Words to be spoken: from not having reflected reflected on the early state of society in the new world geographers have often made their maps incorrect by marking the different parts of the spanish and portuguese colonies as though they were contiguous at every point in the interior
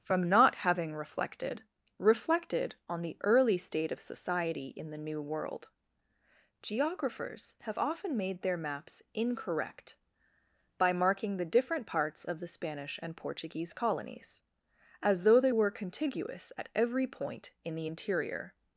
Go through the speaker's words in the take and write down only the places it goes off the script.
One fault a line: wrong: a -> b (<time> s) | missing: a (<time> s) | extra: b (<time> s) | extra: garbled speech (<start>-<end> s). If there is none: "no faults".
no faults